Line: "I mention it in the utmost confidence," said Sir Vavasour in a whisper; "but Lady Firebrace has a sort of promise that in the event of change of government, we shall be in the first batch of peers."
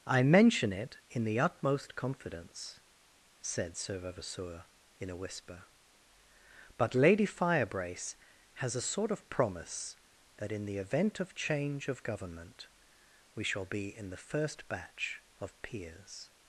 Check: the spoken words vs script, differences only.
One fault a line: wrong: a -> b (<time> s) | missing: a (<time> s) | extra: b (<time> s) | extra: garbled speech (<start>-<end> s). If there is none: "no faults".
no faults